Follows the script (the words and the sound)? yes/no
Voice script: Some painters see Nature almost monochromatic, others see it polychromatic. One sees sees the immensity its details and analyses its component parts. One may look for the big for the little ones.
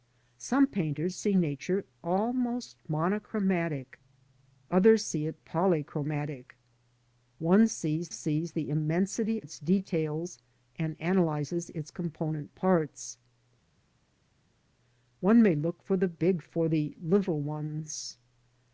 yes